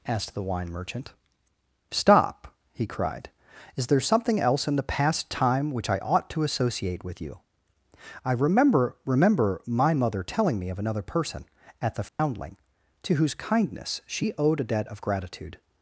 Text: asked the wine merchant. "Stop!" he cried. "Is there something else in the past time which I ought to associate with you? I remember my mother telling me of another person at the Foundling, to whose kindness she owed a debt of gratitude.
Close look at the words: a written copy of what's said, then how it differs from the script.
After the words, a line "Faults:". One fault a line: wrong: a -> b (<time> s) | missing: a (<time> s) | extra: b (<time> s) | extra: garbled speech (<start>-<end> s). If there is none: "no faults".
asked the wine merchant. "Stop!" he cried. "Is there something else in the past time which I ought to associate with you? I remember remember my mother telling me of another person at the Foundling, to whose kindness she owed a debt of gratitude.
Faults:
extra: remember (9.0 s)